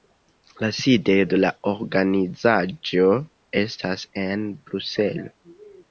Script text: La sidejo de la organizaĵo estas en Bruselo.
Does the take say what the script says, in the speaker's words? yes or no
yes